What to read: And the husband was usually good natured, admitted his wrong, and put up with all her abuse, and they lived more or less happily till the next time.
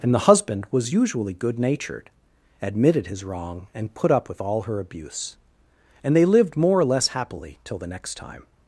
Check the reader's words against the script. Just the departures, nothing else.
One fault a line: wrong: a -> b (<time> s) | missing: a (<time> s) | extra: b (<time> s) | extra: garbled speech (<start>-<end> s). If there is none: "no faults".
no faults